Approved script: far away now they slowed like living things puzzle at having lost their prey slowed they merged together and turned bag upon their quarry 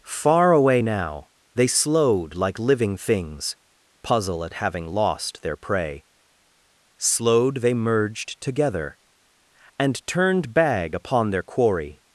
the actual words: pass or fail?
pass